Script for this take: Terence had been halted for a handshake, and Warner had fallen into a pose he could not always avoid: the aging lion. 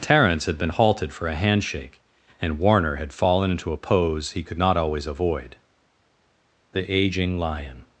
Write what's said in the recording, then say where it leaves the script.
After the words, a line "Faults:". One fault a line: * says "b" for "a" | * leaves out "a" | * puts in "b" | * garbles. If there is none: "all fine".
Terence had been halted for a handshake, and Warner had fallen into a pose he could not always avoid: the aging lion.
Faults:
all fine